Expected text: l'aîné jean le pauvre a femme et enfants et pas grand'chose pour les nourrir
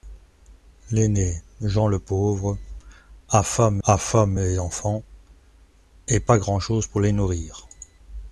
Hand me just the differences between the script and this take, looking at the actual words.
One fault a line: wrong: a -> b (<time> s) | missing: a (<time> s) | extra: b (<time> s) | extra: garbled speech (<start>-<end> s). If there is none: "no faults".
extra: a femme (3.8 s)